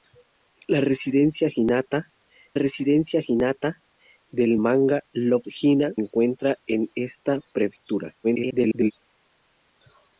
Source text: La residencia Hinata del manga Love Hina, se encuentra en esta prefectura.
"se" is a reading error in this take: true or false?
true